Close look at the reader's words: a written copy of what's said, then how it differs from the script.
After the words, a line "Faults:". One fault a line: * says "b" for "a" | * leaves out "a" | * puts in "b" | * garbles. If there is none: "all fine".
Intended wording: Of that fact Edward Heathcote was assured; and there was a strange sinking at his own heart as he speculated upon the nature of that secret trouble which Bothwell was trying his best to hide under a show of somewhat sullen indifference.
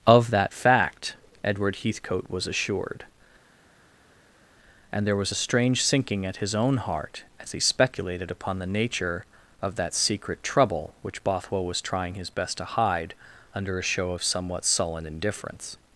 Of that fact Edward Heathcote was assured; and there was a strange sinking at his own heart as he speculated upon the nature of that secret trouble which Bothwell was trying his best to hide under a show of somewhat sullen indifference.
Faults:
all fine